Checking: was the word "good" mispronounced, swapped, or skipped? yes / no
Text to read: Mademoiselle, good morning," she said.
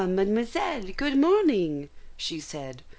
no